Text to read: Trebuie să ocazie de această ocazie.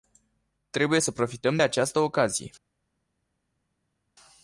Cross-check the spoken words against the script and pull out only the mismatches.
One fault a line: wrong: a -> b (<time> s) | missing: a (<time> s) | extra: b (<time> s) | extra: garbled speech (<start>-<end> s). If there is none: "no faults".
wrong: ocazie -> profităm (1.1 s)